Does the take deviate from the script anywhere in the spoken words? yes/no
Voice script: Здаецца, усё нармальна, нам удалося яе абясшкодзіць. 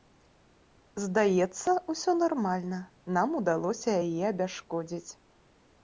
no